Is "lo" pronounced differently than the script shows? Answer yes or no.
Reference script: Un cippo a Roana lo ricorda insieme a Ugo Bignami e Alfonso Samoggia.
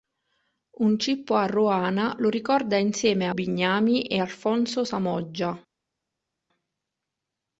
no